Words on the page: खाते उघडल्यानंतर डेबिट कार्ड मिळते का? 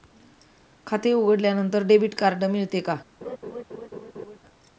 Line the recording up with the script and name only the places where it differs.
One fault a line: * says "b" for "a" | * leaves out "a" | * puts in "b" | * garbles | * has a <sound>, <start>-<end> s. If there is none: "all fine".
* has a laugh, 3.2-4.4 s